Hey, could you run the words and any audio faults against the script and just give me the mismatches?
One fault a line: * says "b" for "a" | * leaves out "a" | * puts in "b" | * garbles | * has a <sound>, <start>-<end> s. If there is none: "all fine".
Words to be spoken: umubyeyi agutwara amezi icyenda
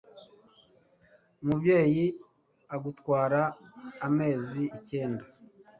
all fine